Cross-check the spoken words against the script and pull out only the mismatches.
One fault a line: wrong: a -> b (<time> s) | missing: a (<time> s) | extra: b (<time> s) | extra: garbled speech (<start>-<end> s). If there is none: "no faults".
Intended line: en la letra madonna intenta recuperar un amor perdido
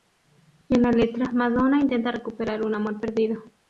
no faults